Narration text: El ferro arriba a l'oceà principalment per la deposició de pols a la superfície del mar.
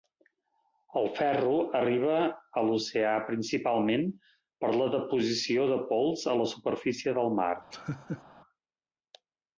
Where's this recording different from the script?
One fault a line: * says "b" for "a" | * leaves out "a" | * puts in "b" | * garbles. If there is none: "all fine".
all fine